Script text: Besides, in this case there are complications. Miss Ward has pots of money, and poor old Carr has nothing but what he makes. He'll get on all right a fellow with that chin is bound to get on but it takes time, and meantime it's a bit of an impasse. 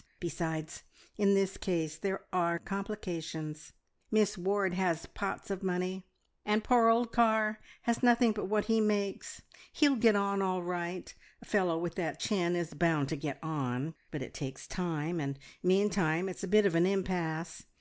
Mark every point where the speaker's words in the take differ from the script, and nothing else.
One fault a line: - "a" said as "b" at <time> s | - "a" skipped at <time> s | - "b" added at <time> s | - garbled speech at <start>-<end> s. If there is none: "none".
none